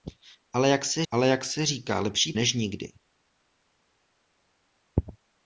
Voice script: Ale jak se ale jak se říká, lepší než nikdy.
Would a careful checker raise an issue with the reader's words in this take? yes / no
no